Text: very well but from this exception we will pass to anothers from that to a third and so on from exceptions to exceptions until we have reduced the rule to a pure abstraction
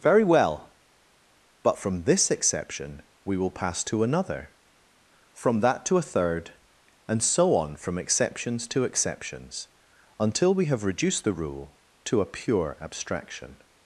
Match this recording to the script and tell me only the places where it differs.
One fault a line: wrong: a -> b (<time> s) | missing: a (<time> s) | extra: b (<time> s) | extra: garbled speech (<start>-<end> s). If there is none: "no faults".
wrong: anothers -> another (4.0 s)